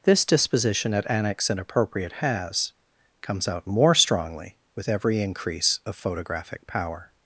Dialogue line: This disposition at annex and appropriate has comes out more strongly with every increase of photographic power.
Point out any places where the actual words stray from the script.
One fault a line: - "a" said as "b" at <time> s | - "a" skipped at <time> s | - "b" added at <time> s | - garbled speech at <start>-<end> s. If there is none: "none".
none